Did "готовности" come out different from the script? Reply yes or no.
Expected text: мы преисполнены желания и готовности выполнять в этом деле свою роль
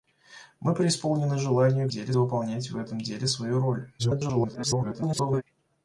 yes